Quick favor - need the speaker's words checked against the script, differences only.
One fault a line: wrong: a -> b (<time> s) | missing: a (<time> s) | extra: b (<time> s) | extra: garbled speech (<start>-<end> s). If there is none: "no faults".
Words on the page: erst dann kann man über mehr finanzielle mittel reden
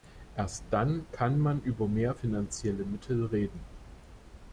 no faults